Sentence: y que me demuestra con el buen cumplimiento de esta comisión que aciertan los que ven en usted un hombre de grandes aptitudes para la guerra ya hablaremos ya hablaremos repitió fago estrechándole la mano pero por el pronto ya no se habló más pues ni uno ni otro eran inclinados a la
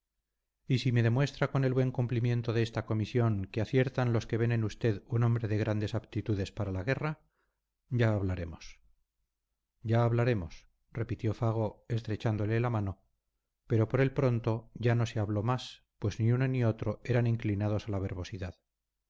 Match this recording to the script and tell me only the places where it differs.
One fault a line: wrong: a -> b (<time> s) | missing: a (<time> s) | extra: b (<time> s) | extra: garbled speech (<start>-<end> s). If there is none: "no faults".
wrong: que -> si (0.8 s)